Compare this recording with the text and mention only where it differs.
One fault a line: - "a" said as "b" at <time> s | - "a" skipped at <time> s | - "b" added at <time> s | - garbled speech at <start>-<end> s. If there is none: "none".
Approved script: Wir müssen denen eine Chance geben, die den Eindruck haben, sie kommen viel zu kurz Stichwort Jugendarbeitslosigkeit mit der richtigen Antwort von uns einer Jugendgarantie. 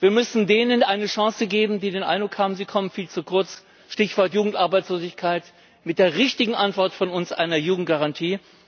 none